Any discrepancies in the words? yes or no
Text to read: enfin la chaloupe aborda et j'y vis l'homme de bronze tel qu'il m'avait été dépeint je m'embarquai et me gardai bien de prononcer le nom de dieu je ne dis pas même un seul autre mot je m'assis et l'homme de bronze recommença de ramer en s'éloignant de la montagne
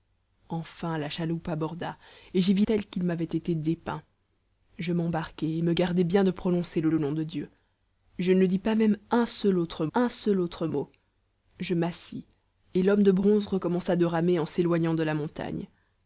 yes